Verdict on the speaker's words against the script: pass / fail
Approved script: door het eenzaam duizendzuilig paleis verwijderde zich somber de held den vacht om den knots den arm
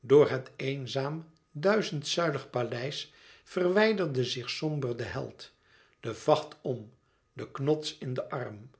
fail